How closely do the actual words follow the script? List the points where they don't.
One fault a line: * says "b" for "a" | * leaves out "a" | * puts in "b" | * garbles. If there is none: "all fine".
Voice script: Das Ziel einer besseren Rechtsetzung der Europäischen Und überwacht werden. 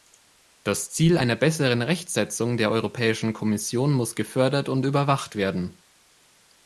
* puts in "Kommission muss gefördert"